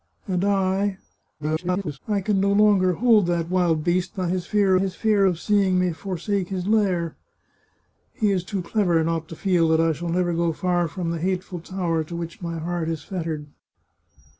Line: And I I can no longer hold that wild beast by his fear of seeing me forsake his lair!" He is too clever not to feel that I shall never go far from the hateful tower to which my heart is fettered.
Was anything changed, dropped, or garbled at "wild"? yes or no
no